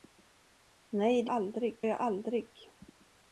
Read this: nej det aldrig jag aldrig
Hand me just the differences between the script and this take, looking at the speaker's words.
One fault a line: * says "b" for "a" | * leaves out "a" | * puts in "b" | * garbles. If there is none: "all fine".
all fine